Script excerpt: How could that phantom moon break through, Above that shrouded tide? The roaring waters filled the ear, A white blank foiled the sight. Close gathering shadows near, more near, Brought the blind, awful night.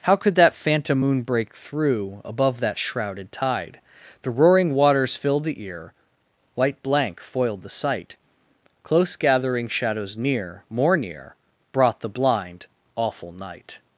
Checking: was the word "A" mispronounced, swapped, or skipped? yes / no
yes